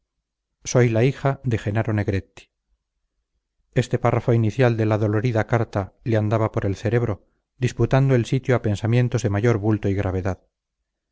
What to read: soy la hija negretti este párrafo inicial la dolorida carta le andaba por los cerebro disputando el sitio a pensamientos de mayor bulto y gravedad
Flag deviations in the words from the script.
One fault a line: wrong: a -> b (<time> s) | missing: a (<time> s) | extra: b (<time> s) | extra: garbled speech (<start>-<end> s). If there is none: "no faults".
extra: de jenaro (1.4 s)
extra: de (4.8 s)
wrong: los -> el (6.7 s)